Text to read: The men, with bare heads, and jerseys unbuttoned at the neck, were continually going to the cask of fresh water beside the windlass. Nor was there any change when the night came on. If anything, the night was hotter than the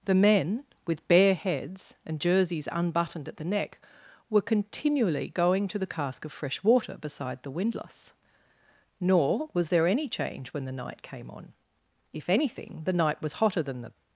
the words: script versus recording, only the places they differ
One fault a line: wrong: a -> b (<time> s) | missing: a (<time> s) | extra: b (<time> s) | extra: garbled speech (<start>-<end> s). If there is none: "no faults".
no faults